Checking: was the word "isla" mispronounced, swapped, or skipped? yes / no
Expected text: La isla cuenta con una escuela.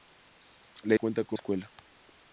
yes